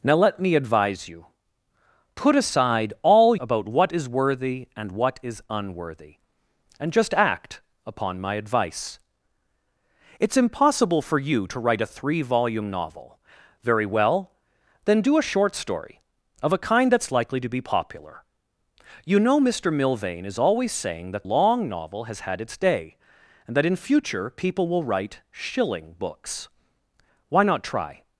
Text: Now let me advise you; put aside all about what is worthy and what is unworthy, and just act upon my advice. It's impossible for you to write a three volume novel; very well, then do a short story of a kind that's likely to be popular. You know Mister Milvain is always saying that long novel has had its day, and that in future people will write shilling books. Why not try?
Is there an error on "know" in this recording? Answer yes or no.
no